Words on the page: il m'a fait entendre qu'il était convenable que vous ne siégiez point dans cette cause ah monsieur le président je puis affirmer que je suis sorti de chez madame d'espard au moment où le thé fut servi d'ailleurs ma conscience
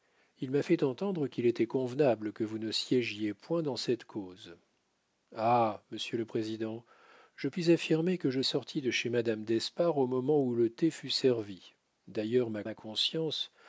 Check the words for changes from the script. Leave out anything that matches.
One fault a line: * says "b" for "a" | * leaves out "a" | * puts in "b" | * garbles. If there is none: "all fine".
* leaves out "suis"
* puts in "ma"